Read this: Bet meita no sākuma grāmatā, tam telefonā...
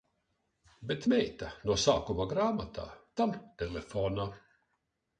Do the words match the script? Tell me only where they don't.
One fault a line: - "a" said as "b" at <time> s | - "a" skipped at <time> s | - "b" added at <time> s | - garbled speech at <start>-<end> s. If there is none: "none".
none